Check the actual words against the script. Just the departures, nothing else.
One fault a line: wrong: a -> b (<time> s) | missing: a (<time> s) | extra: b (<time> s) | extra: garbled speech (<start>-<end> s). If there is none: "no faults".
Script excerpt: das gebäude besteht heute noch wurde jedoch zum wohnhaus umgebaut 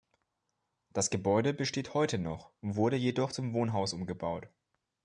no faults